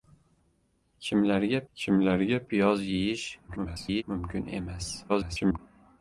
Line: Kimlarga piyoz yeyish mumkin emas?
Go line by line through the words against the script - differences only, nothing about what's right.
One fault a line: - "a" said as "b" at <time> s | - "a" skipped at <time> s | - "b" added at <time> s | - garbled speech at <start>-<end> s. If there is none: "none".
- "kimlarga" added at 1.7 s
- garbled speech at 3.5-4.0 s
- garbled speech at 5.1-5.6 s